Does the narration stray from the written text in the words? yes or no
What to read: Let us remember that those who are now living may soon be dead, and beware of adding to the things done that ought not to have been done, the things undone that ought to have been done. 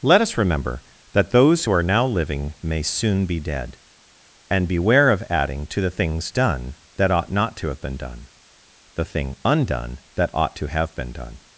yes